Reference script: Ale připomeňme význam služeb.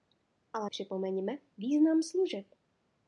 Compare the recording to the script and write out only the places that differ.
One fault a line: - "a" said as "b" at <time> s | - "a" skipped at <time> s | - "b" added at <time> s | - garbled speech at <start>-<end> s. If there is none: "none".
none